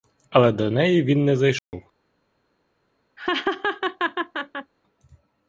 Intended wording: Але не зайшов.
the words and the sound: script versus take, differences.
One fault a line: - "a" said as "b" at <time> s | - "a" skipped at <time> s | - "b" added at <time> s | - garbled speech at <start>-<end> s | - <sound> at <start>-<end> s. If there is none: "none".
- "до неї він" added at 0.5 s
- dropout at 1.6-1.7 s
- laugh at 3.2-4.7 s